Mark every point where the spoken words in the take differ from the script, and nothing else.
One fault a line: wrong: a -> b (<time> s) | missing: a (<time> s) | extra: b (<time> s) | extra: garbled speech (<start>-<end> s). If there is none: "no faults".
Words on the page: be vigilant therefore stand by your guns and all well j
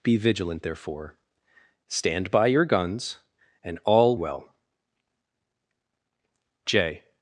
no faults